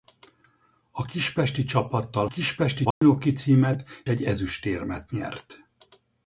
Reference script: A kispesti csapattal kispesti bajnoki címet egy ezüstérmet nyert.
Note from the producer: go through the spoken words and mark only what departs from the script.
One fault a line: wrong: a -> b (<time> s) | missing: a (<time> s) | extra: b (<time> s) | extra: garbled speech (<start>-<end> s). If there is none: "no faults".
no faults